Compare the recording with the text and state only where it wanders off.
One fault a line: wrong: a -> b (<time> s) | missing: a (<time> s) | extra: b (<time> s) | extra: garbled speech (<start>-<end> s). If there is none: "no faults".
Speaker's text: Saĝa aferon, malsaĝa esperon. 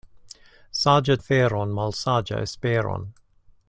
no faults